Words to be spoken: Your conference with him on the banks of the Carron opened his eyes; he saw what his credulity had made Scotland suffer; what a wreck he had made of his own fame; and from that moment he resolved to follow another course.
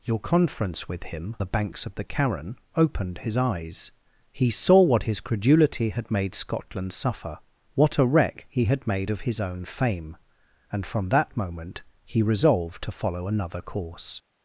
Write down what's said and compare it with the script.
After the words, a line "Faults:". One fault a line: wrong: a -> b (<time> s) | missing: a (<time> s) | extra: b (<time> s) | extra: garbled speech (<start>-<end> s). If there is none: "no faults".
Your conference with him the banks of the Carron opened his eyes; he saw what his credulity had made Scotland suffer; what a wreck he had made of his own fame; and from that moment he resolved to follow another course.
Faults:
missing: on (1.4 s)